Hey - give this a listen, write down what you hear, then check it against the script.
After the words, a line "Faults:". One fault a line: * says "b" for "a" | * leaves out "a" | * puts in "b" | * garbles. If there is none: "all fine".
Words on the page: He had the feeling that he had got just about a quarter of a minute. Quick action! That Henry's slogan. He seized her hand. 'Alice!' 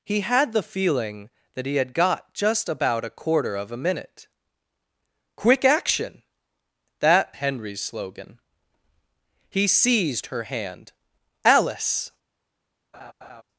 He had the feeling that he had got just about a quarter of a minute. Quick action! That Henry's slogan. He seized her hand. 'Alice!'
Faults:
all fine